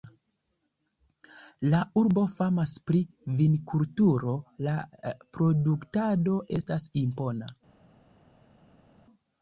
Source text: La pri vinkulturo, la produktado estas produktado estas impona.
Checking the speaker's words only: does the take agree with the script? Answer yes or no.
no